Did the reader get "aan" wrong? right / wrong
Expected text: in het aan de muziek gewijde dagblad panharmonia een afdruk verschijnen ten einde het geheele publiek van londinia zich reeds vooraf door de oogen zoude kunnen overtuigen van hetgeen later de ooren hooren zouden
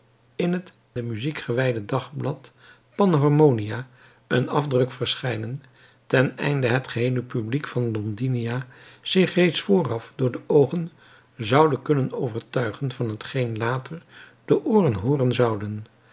wrong